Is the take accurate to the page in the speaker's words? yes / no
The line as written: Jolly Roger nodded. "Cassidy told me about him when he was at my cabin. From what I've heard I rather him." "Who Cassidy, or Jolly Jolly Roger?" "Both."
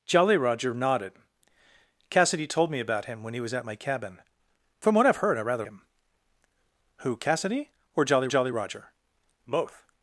yes